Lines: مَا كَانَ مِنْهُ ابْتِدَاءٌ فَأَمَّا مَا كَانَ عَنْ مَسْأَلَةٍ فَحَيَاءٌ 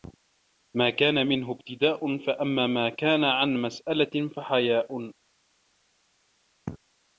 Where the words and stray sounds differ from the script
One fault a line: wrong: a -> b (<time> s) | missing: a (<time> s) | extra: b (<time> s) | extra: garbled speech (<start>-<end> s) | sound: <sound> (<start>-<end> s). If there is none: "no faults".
no faults